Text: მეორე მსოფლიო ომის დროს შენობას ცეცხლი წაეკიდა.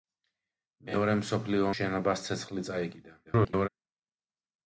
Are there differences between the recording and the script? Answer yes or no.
yes